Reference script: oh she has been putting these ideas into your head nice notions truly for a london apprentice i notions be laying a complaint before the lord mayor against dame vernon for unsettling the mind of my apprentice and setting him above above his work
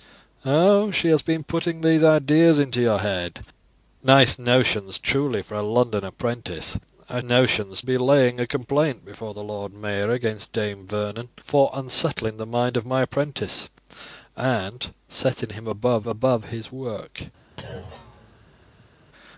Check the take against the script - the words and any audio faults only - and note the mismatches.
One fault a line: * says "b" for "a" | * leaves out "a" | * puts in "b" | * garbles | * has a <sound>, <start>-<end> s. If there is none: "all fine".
* has a thud, 17.6-18.9 s